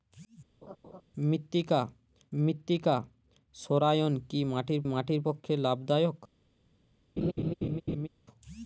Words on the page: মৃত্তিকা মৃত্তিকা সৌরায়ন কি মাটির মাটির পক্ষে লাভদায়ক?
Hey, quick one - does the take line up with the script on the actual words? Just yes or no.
yes